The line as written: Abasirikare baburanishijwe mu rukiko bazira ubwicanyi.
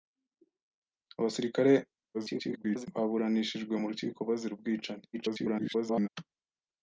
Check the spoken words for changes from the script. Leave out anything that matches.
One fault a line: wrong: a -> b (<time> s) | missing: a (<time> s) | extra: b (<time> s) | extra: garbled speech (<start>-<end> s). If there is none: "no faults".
extra: garbled speech (2.1-2.9 s)
extra: garbled speech (5.1-6.1 s)